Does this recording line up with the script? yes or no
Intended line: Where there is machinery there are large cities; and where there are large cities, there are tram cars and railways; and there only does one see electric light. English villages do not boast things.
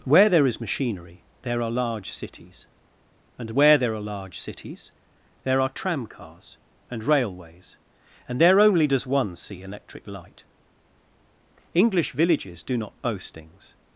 yes